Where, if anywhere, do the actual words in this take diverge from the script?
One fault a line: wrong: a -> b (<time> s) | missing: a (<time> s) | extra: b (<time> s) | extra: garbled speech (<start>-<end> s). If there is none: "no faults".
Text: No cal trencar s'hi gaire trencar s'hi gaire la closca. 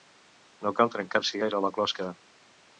missing: trencar s'hi gaire (1.6 s)